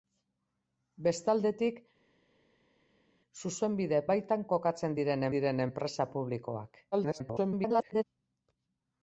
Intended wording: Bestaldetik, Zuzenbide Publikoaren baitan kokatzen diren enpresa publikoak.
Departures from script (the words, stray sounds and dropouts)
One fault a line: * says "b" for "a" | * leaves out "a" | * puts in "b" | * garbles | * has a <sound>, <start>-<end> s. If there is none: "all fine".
* leaves out "Publikoaren"
* puts in "diren"
* garbles